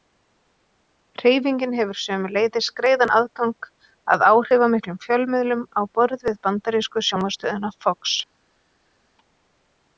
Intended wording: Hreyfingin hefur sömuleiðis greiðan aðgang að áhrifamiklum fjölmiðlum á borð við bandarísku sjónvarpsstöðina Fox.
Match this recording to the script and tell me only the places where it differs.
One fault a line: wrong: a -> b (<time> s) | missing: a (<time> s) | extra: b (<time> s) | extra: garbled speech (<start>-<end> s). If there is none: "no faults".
no faults